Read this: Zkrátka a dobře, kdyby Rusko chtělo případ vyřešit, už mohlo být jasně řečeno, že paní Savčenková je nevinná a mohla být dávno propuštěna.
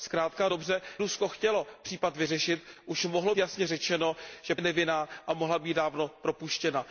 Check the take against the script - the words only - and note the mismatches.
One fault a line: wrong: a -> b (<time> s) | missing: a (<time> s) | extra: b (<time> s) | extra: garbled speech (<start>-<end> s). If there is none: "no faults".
missing: kdyby (0.8 s)
missing: být (3.4 s)
missing: paní Savčenková (4.6 s)